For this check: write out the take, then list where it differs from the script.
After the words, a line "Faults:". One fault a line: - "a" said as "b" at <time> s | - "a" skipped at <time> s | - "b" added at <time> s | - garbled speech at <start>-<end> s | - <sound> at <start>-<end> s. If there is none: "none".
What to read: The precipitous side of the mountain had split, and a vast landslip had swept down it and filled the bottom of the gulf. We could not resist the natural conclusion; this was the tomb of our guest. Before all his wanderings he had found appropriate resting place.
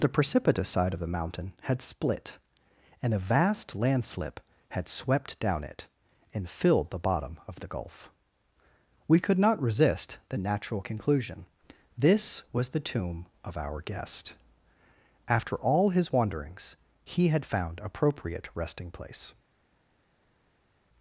The precipitous side of the mountain had split, and a vast landslip had swept down it and filled the bottom of the gulf. We could not resist the natural conclusion; this was the tomb of our guest. After all his wanderings he had found appropriate resting place.
Faults:
- "Before" said as "After" at 15.3 s